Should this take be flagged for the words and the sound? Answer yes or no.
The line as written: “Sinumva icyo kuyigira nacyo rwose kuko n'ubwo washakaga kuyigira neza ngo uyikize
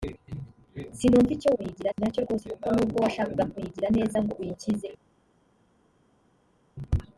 no